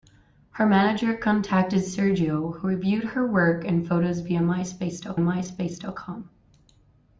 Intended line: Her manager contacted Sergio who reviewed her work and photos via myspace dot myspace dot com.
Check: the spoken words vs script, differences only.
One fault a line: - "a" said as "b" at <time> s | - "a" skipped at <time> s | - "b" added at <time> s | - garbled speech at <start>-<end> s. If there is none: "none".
none